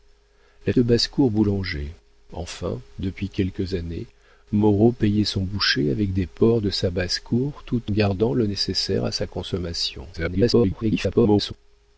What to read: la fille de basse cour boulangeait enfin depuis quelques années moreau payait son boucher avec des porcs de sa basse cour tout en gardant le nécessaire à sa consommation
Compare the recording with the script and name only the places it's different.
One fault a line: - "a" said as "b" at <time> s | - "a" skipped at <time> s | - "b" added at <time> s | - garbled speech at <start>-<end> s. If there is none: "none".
- "fille" skipped at 0.7 s
- "en" skipped at 7.9 s
- garbled speech at 10.1-11.5 s